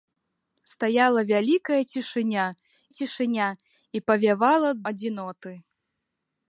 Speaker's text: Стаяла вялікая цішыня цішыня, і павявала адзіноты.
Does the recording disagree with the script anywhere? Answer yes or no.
no